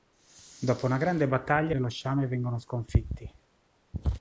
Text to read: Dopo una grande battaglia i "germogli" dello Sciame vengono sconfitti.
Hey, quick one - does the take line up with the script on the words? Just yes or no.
no